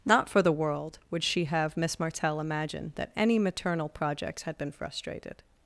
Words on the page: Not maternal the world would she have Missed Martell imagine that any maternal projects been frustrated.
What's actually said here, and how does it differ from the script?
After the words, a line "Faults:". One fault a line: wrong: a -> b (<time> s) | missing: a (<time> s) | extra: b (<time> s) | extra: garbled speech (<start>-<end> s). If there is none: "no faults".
Not for the world would she have Miss Martell imagine that any maternal projects had been frustrated.
Faults:
wrong: maternal -> for (0.3 s)
wrong: Missed -> Miss (1.8 s)
extra: had (4.4 s)